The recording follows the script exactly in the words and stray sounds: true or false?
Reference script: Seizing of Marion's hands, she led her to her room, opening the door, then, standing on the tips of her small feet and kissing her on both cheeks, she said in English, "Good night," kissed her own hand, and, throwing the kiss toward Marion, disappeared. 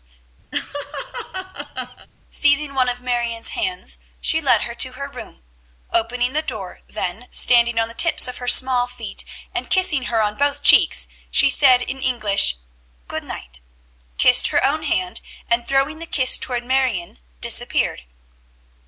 false